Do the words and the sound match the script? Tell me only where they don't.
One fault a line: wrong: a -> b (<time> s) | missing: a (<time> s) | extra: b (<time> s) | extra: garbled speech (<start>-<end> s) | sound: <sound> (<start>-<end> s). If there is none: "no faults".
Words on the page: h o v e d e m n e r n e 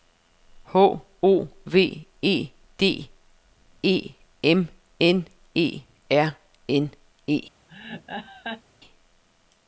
sound: laugh (7.7-8.6 s)